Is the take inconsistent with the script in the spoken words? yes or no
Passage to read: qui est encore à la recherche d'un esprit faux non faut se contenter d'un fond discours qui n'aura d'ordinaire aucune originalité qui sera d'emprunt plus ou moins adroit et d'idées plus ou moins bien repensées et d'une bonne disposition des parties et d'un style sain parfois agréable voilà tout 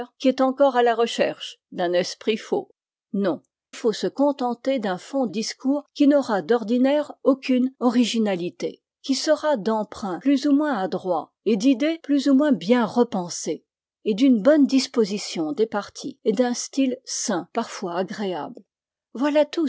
no